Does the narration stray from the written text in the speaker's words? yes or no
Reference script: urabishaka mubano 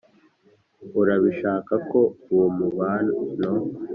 yes